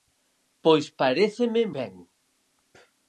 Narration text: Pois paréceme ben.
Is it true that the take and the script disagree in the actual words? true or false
false